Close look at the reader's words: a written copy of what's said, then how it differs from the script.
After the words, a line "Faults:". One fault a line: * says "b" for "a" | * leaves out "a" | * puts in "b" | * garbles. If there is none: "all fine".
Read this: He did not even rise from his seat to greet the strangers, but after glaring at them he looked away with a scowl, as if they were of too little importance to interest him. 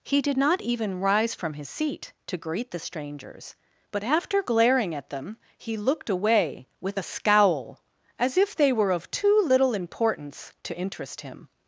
He did not even rise from his seat to greet the strangers, but after glaring at them he looked away with a scowl, as if they were of too little importance to interest him.
Faults:
all fine